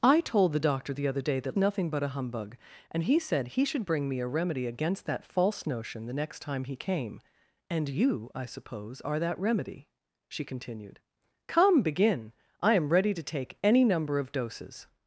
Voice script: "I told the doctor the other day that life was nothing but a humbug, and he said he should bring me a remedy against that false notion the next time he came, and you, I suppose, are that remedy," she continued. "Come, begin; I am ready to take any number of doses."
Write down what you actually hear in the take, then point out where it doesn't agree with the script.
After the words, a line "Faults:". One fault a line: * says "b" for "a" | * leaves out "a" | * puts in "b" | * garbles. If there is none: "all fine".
"I told the doctor the other day that nothing but a humbug, and he said he should bring me a remedy against that false notion the next time he came, and you, I suppose, are that remedy," she continued. "Come, begin; I am ready to take any number of doses."
Faults:
* leaves out "life was"